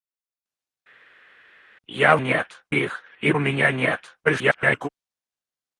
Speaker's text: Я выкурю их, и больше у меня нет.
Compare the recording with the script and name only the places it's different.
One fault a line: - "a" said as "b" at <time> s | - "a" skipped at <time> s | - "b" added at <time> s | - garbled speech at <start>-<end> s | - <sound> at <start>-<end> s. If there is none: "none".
- "выкурю" said as "нет" at 2.2 s
- "больше" skipped at 3.3 s
- garbled speech at 4.2-4.9 s